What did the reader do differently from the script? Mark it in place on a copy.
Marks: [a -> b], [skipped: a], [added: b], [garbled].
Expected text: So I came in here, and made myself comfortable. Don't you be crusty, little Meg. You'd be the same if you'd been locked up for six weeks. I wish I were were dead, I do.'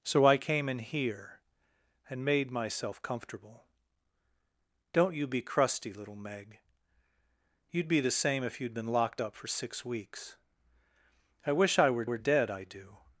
So I came in here, and made myself comfortable. Don't you be crusty, little Meg. You'd be the same if you'd been locked up for six weeks. I wish I were were dead, I do.'